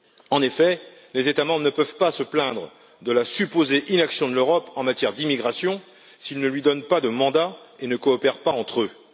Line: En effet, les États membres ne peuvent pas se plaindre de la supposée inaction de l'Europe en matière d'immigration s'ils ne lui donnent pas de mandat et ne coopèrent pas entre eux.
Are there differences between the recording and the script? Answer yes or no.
no